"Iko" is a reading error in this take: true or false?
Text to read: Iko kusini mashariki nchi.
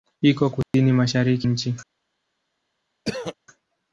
false